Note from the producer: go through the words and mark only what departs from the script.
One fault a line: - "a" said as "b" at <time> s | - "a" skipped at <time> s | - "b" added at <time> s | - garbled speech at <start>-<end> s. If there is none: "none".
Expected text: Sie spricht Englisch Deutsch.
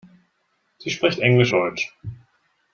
none